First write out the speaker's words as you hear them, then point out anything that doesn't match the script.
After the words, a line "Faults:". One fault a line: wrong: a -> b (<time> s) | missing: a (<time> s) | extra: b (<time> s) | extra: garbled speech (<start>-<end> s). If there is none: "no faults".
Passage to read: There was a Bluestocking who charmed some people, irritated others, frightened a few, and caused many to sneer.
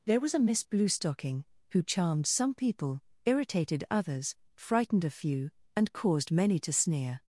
There was a Miss Bluestocking who charmed some people, irritated others, frightened a few, and caused many to sneer.
Faults:
extra: Miss (0.4 s)